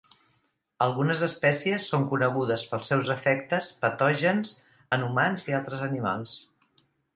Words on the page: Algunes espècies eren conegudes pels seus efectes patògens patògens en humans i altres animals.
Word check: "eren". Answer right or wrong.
wrong